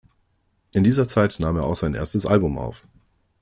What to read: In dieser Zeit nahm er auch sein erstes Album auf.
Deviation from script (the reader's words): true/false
false